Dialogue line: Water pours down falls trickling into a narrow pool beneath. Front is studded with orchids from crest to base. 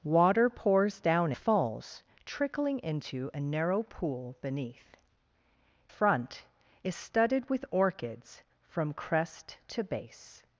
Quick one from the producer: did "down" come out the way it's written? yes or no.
yes